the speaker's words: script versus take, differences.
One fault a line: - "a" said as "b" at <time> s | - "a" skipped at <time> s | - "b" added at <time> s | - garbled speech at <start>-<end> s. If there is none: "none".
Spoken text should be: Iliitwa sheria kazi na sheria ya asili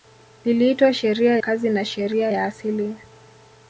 none